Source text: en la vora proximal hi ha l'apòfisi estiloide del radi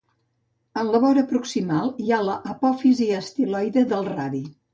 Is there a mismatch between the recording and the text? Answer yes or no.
no